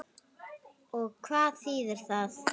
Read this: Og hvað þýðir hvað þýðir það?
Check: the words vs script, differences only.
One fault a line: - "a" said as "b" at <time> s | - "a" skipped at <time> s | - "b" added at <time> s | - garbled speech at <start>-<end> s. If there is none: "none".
- "hvað þýðir" skipped at 2.1 s